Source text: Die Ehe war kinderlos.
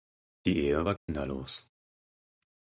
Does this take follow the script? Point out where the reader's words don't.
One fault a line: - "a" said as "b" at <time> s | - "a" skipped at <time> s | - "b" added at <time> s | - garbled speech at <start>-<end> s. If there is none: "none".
none